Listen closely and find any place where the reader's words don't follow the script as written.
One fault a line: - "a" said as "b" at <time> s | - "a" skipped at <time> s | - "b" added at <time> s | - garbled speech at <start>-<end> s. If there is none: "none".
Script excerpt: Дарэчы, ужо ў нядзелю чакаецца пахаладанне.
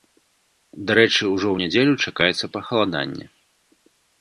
none